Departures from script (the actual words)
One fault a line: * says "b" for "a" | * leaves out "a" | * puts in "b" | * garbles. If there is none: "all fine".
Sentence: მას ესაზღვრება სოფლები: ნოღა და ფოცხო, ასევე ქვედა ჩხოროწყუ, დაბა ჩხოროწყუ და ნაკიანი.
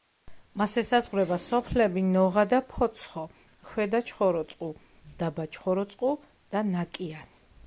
* leaves out "ასევე"